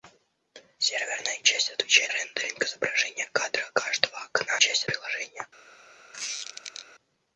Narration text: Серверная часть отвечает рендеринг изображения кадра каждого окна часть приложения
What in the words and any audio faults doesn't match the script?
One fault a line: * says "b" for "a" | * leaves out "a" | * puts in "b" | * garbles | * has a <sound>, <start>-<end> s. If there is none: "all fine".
* has a squeak, 6.1-6.9 s